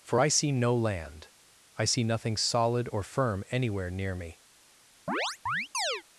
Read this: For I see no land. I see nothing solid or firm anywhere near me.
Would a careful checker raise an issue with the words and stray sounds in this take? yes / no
yes